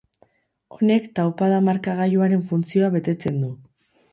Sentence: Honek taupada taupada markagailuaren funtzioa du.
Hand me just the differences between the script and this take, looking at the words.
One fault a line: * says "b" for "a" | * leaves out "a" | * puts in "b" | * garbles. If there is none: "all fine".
* leaves out "taupada"
* puts in "betetzen"